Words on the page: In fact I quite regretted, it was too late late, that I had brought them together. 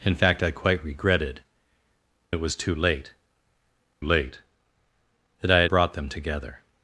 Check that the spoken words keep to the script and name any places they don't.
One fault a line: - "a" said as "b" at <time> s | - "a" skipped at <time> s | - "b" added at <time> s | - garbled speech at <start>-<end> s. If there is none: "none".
none